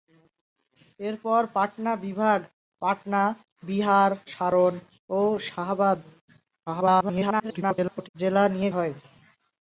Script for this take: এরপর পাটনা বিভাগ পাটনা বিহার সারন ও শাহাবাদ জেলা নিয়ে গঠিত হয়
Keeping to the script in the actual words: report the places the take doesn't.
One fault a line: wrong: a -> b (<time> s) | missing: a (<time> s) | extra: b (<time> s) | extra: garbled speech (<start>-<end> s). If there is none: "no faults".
extra: garbled speech (6.7-8.1 s)
missing: গঠিত (8.7 s)